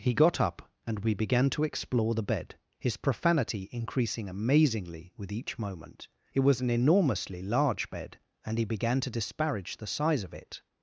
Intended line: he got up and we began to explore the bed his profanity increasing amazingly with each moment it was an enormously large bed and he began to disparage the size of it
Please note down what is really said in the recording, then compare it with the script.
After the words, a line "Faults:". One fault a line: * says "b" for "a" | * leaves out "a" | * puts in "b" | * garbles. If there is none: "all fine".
he got up and we began to explore the bed his profanity increasing amazingly with each moment it was an enormously large bed and he began to disparage the size of it
Faults:
all fine